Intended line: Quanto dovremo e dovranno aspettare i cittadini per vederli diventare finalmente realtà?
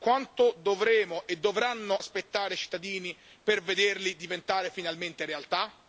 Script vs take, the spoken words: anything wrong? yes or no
no